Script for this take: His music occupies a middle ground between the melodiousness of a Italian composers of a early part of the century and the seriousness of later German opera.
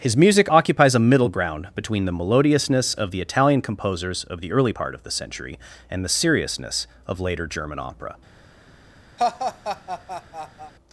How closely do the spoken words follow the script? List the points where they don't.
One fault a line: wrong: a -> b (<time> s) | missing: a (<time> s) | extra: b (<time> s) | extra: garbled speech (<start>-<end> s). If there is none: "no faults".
wrong: a -> the (3.1 s)
wrong: a -> the (4.4 s)